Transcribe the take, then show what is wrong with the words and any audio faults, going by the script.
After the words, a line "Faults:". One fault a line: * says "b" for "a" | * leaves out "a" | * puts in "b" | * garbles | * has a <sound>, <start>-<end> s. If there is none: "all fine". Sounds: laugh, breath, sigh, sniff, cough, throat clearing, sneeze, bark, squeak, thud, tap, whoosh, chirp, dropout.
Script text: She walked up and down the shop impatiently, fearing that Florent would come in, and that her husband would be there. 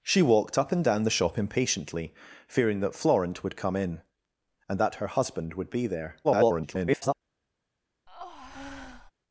She walked up and down the shop impatiently, fearing that Florent would come in, and that her husband would be there. [garbled]
Faults:
* garbles
* has a breath, 8.1-9.1 s